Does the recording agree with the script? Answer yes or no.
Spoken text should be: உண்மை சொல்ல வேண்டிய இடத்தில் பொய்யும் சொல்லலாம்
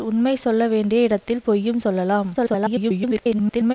no